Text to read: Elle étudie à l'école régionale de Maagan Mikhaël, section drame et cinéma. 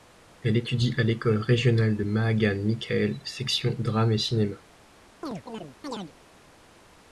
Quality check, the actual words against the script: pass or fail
pass